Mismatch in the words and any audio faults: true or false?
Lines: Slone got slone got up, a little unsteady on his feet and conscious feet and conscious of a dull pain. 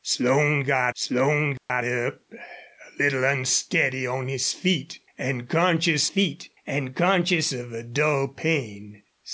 true